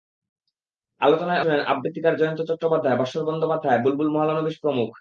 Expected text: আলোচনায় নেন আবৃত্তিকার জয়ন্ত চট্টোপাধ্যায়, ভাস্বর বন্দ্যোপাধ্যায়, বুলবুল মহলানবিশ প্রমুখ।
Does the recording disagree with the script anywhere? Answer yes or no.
no